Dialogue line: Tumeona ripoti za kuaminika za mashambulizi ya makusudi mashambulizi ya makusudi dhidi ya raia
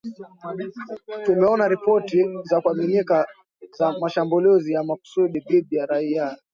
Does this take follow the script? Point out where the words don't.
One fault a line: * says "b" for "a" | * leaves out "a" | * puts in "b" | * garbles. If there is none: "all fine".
* leaves out "mashambulizi ya makusudi"